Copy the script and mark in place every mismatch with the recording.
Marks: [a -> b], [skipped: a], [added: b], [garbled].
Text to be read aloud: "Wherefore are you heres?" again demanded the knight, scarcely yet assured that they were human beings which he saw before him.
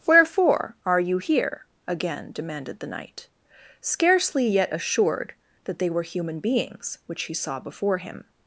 "Wherefore are you [heres?" -> here] again demanded the knight, scarcely yet assured that they were human beings which he saw before him.